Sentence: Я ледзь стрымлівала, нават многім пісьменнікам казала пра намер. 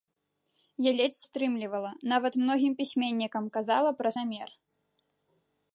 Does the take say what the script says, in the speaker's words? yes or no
yes